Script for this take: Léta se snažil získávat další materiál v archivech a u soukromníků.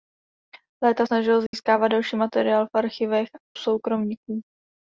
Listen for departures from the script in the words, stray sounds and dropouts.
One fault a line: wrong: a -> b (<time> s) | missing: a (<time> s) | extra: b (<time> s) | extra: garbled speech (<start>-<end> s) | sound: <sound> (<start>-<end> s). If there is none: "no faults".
missing: se (1.1 s)
sound: dropout (1.5-1.5 s)
missing: a u (3.3 s)